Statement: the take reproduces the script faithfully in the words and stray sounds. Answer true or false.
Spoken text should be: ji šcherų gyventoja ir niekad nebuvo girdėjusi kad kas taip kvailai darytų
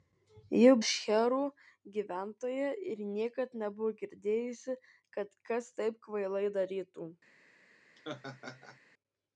false